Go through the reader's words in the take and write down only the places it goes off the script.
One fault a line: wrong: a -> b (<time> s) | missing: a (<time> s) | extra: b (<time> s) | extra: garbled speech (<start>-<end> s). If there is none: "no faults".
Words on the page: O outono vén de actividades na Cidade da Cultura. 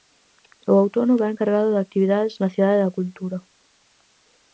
extra: cargado (1.4 s)